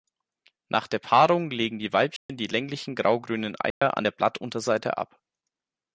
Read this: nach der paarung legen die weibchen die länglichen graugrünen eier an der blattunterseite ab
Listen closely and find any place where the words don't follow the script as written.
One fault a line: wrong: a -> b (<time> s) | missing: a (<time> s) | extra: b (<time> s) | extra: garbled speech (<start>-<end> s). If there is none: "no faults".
no faults